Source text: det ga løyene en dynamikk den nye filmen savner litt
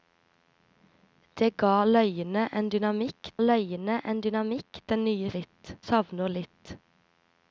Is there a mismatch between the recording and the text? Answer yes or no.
yes